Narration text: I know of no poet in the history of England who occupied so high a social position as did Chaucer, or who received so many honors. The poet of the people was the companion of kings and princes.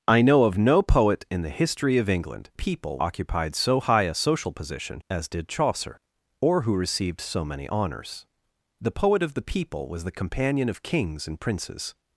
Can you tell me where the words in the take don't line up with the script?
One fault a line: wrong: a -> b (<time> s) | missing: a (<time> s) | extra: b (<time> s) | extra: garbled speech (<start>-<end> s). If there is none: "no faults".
wrong: who -> people (2.5 s)